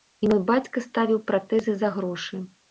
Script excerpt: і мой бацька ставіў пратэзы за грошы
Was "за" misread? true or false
false